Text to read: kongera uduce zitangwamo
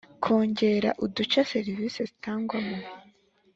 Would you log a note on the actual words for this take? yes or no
yes